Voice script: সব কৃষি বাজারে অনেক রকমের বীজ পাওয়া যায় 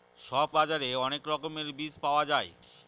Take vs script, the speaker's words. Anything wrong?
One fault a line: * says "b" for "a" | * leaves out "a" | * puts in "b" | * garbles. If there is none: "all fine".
* leaves out "কৃষি"